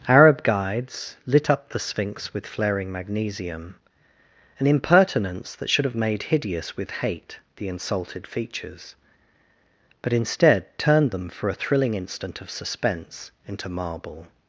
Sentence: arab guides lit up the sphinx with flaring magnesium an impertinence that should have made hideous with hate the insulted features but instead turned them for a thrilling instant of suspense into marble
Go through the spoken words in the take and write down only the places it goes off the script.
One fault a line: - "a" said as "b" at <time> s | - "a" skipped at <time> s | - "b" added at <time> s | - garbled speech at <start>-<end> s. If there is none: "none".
none